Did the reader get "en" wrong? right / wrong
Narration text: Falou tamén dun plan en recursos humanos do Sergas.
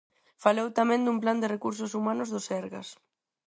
wrong